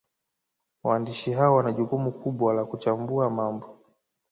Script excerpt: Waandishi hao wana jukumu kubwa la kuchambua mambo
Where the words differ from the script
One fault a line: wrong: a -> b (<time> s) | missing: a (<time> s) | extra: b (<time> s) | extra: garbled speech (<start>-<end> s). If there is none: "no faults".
no faults